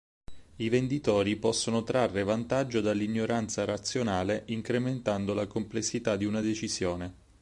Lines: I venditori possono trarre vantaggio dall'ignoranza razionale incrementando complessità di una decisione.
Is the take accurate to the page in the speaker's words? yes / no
no